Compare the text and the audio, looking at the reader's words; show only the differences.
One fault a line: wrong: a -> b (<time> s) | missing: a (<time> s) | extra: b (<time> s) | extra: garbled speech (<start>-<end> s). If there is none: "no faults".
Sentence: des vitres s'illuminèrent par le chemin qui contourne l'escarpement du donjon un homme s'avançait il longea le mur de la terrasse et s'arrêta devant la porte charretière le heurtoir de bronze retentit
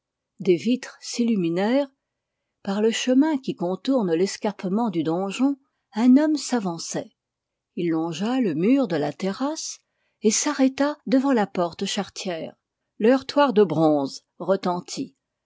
no faults